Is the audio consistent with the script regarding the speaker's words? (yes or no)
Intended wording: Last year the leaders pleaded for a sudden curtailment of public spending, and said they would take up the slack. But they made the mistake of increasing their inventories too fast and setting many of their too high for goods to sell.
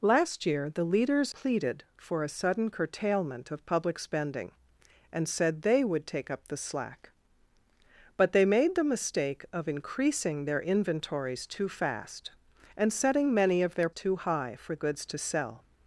yes